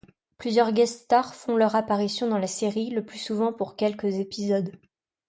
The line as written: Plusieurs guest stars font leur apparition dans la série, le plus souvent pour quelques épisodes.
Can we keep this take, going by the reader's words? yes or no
yes